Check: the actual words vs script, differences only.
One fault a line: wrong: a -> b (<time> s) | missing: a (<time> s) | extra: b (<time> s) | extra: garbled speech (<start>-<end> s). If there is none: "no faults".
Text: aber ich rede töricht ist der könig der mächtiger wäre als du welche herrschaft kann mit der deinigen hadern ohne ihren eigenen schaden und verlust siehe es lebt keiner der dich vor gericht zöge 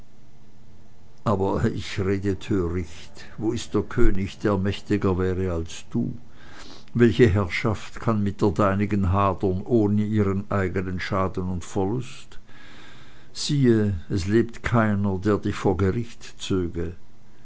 extra: wo (3.4 s)